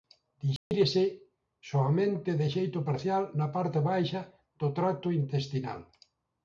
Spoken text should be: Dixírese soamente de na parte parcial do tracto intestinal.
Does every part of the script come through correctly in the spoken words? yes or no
no